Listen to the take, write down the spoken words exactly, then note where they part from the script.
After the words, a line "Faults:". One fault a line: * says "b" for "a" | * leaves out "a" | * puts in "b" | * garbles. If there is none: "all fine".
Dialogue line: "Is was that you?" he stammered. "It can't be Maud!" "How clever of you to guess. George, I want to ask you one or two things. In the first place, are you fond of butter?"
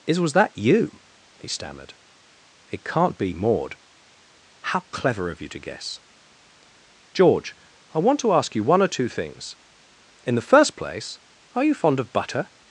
"Is was that you?" he stammered. "It can't be Maud!" "How clever of you to guess. George, I want to ask you one or two things. In the first place, are you fond of butter?"
Faults:
all fine